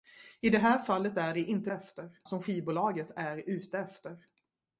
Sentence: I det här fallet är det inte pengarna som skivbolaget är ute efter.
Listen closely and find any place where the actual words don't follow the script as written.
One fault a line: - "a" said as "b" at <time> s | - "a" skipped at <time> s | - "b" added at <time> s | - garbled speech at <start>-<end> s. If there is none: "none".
- "pengarna" said as "efter" at 1.7 s